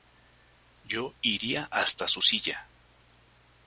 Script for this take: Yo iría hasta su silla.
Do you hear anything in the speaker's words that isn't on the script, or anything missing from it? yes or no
no